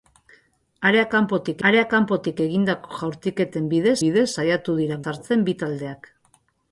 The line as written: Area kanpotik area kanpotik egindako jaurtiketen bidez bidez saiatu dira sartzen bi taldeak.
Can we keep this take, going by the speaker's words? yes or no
yes